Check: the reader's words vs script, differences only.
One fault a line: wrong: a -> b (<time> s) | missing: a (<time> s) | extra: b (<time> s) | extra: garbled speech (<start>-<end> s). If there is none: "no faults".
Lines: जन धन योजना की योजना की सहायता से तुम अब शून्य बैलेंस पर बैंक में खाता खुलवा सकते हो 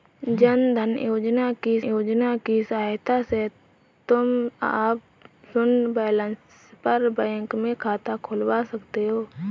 no faults